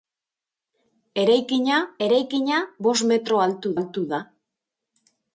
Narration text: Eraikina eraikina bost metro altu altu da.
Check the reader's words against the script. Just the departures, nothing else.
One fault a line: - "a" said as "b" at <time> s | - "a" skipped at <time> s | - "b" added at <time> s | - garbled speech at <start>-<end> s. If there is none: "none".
none